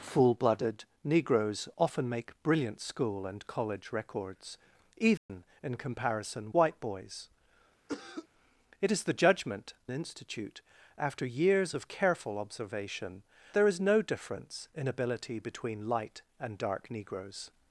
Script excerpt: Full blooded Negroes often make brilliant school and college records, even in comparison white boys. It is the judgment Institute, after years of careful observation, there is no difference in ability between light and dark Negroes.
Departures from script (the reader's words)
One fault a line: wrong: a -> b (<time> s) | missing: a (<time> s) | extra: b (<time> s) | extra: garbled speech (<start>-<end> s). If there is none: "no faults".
no faults